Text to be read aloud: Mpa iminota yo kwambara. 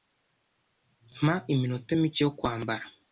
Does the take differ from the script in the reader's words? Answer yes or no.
yes